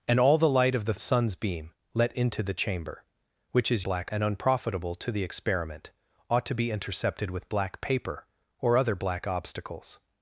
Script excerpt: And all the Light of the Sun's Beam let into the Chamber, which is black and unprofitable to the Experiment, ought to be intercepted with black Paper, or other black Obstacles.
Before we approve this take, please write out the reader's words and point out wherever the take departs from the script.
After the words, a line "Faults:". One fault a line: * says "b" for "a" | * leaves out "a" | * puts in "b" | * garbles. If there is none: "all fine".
And all the Light of the Sun's Beam let into the Chamber, which is black and unprofitable to the Experiment, ought to be intercepted with black Paper, or other black Obstacles.
Faults:
all fine